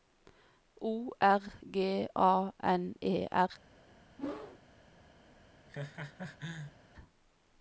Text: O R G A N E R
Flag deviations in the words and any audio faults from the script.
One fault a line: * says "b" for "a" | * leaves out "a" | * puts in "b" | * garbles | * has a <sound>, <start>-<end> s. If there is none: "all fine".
* has a whoosh, 4.2-4.6 s
* has a laugh, 5.7-6.7 s